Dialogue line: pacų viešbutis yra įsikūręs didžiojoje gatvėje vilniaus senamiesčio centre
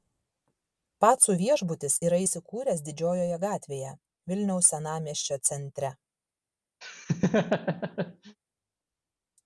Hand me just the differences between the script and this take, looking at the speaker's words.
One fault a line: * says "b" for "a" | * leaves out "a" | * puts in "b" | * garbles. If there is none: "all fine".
all fine